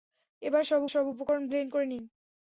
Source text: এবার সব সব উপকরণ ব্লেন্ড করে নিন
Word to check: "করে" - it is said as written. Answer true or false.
true